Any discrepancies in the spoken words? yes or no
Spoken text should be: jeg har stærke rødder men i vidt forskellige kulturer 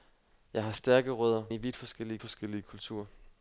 yes